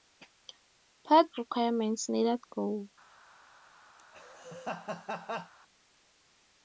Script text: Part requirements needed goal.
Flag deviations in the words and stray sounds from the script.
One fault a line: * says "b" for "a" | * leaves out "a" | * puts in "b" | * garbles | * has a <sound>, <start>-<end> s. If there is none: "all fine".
* has a laugh, 4.0-5.5 s